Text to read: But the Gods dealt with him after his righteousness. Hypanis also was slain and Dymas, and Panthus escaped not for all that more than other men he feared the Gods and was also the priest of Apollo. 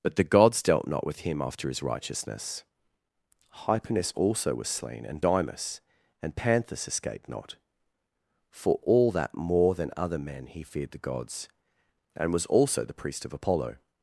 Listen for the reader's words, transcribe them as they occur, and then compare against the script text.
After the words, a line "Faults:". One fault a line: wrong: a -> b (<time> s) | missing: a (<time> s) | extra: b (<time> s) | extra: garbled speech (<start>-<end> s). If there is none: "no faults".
But the Gods dealt not with him after his righteousness. Hypanis also was slain and Dymas, and Panthus escaped not for all that more than other men he feared the Gods and was also the priest of Apollo.
Faults:
extra: not (0.9 s)